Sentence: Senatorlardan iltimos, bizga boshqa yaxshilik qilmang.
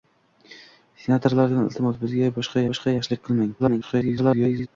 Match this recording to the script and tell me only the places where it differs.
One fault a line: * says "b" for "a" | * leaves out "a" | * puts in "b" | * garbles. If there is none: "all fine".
* puts in "boshqa"
* garbles